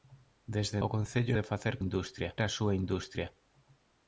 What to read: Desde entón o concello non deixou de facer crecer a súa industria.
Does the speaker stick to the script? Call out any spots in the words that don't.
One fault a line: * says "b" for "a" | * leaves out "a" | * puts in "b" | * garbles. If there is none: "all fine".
* leaves out "entón"
* leaves out "non deixou"
* says "industria" for "crecer"